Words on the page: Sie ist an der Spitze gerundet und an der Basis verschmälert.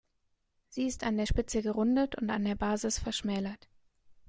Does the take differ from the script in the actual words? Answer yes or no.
no